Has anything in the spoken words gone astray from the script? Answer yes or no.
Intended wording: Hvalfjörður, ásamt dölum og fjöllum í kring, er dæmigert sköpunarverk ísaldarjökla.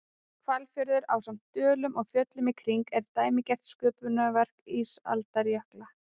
no